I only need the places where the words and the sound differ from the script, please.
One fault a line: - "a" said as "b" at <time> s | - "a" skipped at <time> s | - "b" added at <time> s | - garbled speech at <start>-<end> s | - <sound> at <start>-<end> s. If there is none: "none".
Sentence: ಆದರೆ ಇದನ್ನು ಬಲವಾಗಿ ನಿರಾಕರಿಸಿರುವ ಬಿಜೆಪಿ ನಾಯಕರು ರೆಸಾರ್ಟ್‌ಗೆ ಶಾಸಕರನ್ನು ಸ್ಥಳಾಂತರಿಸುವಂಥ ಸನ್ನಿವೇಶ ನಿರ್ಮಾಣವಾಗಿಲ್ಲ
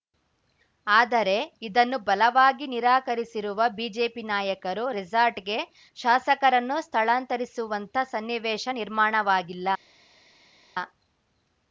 none